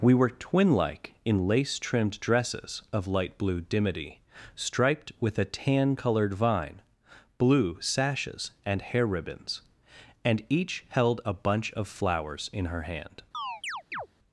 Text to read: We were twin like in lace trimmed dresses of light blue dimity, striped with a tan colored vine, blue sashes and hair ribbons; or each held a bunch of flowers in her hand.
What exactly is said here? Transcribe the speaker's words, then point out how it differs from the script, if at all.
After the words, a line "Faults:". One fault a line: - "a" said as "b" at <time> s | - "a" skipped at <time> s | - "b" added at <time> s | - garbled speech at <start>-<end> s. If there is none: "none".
We were twin like in lace trimmed dresses of light blue dimity, striped with a tan colored vine, blue sashes and hair ribbons; and each held a bunch of flowers in her hand.
Faults:
- "or" said as "and" at 10.2 s